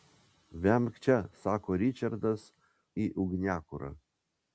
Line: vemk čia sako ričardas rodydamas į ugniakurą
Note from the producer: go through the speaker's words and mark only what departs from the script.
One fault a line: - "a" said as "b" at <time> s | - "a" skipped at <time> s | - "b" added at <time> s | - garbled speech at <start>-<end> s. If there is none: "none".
- "rodydamas" skipped at 2.5 s